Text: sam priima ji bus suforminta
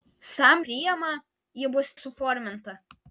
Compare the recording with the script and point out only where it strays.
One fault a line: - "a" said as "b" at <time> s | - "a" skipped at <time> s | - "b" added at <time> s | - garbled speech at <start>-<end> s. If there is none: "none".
none